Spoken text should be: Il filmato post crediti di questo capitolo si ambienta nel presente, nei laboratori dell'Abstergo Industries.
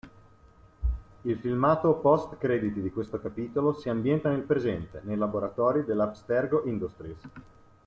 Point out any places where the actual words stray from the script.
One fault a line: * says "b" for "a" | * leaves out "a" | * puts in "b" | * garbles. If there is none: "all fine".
all fine